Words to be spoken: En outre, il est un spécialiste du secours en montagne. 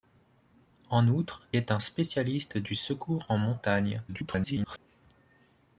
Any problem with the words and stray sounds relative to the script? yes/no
yes